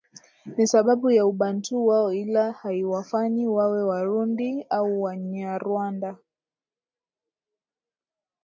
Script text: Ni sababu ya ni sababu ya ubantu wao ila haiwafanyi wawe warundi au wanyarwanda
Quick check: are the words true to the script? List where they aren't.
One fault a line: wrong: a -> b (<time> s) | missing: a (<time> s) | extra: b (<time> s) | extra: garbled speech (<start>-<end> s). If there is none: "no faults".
missing: ni sababu ya (1.3 s)